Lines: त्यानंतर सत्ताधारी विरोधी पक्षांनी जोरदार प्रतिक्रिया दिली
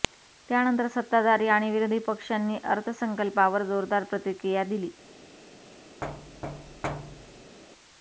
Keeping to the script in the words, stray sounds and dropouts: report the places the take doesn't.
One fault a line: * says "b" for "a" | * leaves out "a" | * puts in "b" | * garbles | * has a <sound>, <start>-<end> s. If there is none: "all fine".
* puts in "आणि"
* puts in "अर्थसंकल्पावर"
* has a thud, 6.0-7.6 s